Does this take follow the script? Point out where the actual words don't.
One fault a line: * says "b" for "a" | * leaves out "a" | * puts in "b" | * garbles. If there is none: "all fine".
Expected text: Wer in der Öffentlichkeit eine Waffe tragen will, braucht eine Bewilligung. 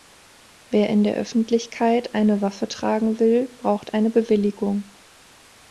all fine